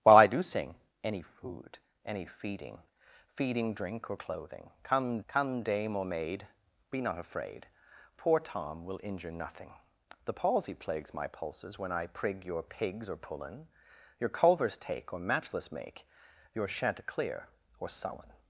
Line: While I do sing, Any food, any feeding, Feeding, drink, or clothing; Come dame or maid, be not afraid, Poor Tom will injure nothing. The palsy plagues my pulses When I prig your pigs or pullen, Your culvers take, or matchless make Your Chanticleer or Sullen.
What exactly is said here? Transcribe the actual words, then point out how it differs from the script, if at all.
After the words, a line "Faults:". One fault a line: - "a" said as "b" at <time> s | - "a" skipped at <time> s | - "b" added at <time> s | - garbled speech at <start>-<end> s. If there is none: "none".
While I do sing, Any food, any feeding, Feeding, drink, or clothing; Come Come dame or maid, be not afraid, Poor Tom will injure nothing. The palsy plagues my pulses When I prig your pigs or pullen, Your culvers take, or matchless make Your Chanticleer or Sullen.
Faults:
- "Come" added at 5.3 s